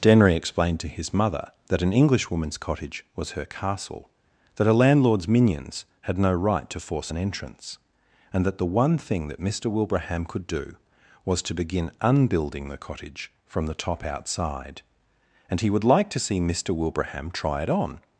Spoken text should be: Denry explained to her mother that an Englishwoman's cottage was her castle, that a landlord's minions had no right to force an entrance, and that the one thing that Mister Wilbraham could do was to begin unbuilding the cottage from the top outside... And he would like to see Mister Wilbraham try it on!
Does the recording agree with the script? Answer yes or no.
no